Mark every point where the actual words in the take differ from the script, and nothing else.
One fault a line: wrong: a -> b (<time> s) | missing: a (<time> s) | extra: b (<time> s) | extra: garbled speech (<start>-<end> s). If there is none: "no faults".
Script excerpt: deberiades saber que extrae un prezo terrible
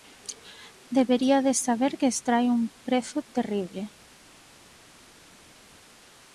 no faults